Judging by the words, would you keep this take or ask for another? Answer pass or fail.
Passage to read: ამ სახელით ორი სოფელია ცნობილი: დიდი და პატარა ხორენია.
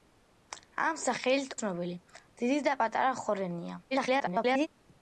fail